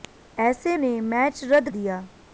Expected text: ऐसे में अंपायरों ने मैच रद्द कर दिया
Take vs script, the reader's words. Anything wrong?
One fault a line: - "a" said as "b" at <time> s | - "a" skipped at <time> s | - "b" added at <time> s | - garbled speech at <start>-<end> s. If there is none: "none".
- "में अंपायरों" skipped at 0.8 s
- "कर" skipped at 1.7 s